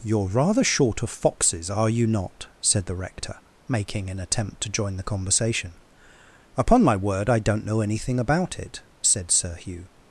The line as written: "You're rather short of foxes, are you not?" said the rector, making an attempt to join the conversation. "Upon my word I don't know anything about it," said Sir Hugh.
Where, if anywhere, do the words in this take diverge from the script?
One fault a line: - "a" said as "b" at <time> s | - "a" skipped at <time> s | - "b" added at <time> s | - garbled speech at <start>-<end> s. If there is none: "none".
none